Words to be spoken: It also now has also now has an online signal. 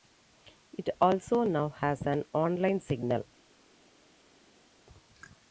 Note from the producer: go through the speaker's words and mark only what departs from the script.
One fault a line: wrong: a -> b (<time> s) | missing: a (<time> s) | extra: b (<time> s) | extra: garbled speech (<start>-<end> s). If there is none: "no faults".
missing: also now has (2.0 s)